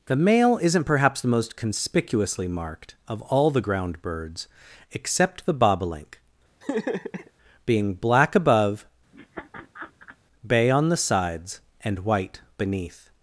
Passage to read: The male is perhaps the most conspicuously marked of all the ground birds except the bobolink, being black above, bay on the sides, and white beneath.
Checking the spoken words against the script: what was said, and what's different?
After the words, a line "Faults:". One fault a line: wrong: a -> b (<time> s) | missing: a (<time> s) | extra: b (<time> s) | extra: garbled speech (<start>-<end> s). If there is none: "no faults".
The male isn't perhaps the most conspicuously marked of all the ground birds except the bobolink, being black above, bay on the sides, and white beneath.
Faults:
wrong: is -> isn't (0.6 s)